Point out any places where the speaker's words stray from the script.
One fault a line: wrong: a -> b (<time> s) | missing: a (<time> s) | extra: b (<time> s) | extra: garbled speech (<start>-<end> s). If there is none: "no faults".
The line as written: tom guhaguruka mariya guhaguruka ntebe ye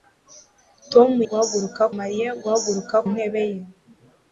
no faults